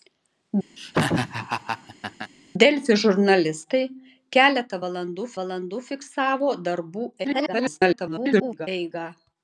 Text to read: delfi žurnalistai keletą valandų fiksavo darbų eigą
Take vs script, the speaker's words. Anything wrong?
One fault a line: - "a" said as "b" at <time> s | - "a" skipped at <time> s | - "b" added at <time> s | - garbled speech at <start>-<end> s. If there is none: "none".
- "valandų" added at 5.4 s
- garbled speech at 7.2-8.7 s